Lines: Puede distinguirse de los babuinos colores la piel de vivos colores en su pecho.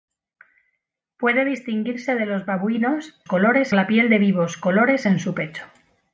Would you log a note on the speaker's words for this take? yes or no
no